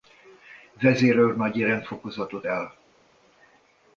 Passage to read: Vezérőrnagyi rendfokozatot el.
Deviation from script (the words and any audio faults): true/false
false